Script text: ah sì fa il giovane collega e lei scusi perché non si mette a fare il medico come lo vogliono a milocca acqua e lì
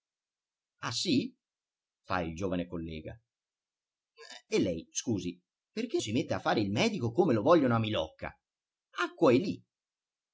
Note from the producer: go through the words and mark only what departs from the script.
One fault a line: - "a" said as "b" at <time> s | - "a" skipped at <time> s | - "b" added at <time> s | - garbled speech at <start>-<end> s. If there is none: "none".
- "non" skipped at 6.0 s